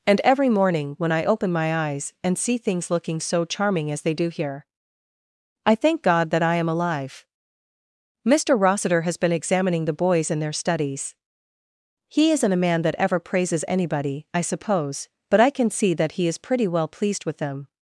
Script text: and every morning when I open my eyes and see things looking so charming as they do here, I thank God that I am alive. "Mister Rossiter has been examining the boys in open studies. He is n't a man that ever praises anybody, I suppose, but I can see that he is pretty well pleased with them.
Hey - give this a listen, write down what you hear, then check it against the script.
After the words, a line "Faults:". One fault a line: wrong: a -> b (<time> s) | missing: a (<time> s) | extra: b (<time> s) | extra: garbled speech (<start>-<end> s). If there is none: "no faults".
and every morning when I open my eyes and see things looking so charming as they do here, I thank God that I am alive. "Mister Rossiter has been examining the boys in their studies. He is n't a man that ever praises anybody, I suppose, but I can see that he is pretty well pleased with them.
Faults:
wrong: open -> their (10.4 s)